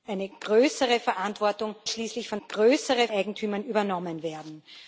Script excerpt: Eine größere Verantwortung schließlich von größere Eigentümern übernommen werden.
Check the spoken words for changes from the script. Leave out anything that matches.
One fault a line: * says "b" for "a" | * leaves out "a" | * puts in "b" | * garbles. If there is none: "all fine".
all fine